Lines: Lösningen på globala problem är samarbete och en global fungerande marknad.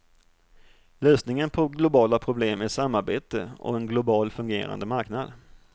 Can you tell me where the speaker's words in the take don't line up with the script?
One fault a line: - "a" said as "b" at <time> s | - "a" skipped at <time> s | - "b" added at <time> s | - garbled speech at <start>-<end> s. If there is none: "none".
none